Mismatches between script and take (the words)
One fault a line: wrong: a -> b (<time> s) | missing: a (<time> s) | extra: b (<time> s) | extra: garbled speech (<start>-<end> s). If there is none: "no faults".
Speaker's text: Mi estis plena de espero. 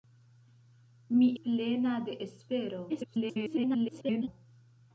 missing: estis (1.3 s)
extra: garbled speech (2.9-4.3 s)